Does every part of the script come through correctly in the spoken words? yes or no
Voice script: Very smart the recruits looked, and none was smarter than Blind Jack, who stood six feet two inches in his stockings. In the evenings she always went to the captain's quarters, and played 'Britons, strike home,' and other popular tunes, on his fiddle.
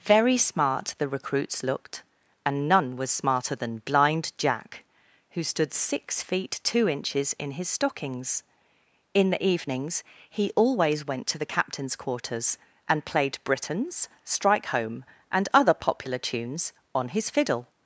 no